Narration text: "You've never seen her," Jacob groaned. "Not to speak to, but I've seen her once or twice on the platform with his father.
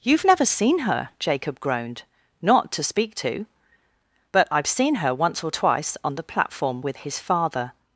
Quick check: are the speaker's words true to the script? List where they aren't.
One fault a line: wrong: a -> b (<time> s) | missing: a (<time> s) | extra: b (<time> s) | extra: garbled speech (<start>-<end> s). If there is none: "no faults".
no faults